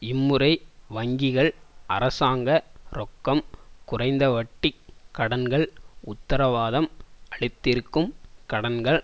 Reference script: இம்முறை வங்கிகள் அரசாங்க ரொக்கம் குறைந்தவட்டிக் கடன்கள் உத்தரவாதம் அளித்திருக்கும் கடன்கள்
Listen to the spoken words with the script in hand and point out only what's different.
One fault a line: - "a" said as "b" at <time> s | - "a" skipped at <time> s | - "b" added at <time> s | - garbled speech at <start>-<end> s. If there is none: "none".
none